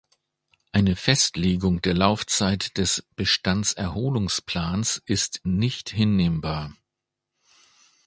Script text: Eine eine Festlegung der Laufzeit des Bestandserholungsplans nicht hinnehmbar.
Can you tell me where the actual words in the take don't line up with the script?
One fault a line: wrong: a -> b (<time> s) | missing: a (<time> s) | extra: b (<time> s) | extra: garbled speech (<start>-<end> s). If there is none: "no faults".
missing: eine (0.9 s)
extra: ist (5.0 s)